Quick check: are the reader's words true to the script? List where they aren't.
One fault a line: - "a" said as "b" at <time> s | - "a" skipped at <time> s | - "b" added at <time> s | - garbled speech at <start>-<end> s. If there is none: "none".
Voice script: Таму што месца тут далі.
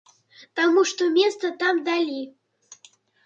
- "тут" said as "там" at 1.6 s